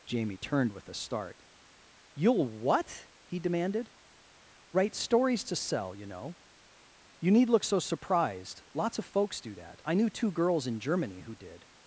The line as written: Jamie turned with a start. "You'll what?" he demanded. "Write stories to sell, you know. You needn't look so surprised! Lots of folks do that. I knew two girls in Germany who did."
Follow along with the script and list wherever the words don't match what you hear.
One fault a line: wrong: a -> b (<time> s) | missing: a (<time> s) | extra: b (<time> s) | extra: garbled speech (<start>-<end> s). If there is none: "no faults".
wrong: needn't -> need (7.3 s)